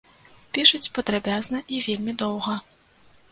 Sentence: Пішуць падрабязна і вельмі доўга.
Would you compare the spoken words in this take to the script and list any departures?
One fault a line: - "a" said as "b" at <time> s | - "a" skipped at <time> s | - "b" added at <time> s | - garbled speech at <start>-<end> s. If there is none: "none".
none